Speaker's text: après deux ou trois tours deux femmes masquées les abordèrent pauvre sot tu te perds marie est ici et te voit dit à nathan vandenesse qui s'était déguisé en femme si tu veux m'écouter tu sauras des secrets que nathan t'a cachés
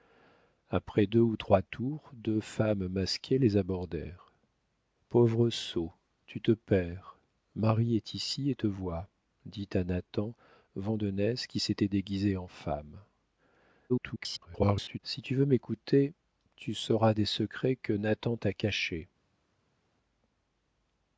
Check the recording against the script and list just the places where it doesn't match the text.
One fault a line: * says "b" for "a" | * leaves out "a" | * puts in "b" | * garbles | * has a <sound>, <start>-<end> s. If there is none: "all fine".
* garbles